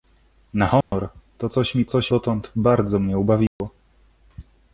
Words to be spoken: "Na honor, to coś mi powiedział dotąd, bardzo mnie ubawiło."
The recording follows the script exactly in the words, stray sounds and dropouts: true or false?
false